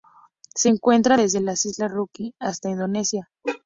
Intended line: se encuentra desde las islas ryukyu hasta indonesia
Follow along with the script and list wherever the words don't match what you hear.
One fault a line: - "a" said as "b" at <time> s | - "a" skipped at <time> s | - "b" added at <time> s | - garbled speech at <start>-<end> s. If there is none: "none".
none